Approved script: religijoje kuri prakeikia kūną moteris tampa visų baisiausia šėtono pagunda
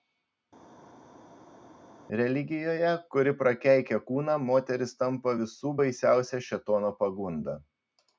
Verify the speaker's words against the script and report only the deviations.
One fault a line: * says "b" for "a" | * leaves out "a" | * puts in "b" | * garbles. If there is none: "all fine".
all fine